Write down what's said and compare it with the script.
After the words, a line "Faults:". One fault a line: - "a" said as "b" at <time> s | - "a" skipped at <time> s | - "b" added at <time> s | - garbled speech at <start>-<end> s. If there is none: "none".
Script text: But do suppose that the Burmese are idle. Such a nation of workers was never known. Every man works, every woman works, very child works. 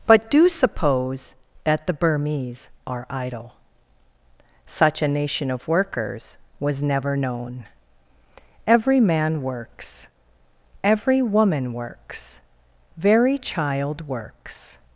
But do suppose that the Burmese are idle. Such a nation of workers was never known. Every man works, every woman works, very child works.
Faults:
none